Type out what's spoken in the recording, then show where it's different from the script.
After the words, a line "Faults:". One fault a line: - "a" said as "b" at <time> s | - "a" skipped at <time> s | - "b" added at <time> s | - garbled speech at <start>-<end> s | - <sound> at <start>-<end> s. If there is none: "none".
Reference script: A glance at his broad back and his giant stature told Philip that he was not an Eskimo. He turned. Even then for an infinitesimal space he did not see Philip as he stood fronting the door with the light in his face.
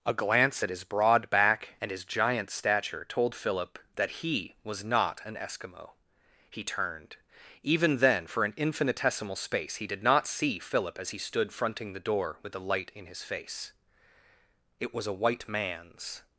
A glance at his broad back and his giant stature told Philip that he was not an Eskimo. He turned. Even then for an infinitesimal space he did not see Philip as he stood fronting the door with the light in his face. It was a white man's
Faults:
- "It was a white man's" added at 14.8 s